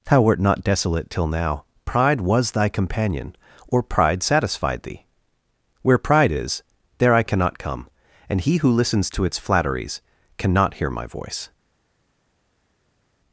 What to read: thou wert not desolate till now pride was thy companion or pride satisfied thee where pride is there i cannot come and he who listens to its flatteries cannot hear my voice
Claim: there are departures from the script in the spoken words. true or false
false